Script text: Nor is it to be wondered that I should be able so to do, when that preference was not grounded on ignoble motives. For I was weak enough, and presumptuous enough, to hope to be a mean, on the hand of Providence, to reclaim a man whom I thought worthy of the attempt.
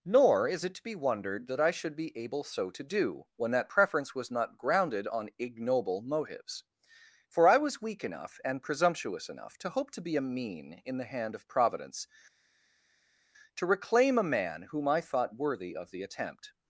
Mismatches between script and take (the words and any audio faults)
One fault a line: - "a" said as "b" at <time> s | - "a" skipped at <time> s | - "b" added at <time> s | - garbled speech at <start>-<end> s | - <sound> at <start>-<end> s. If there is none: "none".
- "on" said as "in" at 10.9 s